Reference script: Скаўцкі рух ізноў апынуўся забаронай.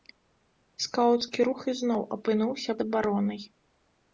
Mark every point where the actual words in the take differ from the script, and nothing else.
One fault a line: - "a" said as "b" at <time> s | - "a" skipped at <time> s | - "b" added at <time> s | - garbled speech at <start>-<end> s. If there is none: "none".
none